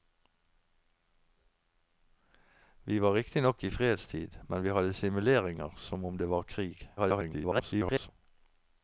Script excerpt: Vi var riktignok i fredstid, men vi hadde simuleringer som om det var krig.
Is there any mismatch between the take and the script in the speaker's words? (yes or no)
yes